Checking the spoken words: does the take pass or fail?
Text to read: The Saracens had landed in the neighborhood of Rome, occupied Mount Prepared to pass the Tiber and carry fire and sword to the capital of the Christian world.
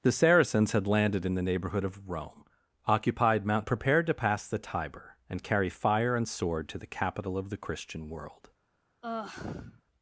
pass